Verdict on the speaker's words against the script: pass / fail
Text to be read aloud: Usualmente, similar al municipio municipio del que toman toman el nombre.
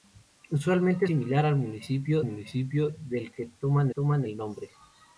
pass